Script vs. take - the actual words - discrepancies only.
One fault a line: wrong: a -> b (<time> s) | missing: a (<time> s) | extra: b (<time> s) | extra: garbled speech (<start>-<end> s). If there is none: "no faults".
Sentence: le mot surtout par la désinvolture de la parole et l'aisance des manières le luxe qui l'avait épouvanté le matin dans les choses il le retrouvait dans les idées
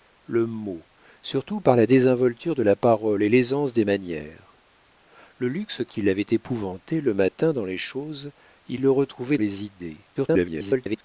missing: dans (9.4 s)
extra: garbled speech (10.1-11.0 s)